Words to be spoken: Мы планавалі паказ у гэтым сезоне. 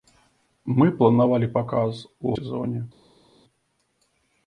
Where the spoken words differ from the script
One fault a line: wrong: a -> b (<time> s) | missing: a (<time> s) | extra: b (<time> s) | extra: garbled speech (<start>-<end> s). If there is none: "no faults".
missing: гэтым (2.4 s)